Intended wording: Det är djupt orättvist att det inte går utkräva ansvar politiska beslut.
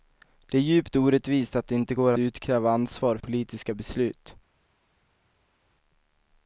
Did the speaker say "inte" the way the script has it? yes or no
yes